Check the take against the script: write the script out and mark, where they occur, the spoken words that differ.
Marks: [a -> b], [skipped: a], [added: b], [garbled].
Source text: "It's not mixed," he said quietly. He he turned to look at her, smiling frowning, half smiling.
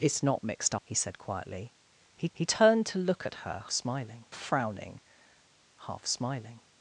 "It's not mixed," he said quietly. He he turned to look at her, smiling frowning, half smiling.